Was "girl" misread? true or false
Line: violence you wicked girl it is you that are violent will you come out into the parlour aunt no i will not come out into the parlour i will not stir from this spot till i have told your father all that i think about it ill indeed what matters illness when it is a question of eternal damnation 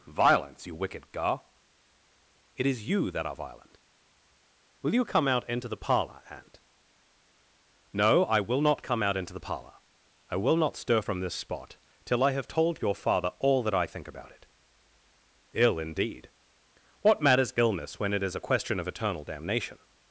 true